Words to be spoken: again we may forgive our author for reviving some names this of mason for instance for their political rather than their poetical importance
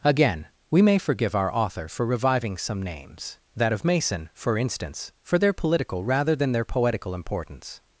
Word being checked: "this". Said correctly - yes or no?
no